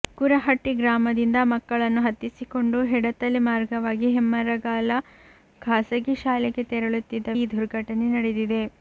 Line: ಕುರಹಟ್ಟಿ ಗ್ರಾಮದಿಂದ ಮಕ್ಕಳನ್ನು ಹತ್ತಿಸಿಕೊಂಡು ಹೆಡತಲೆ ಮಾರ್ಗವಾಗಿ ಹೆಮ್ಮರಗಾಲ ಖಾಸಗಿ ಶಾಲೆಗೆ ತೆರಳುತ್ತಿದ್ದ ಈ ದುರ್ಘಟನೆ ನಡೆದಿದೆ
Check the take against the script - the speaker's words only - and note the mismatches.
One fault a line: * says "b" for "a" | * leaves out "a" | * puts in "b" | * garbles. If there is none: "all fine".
all fine